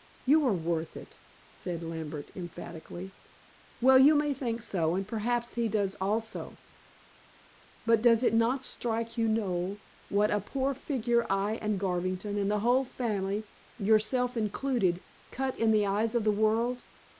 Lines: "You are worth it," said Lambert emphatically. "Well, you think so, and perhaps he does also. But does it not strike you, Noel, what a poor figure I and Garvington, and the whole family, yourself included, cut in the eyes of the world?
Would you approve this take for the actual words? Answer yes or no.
no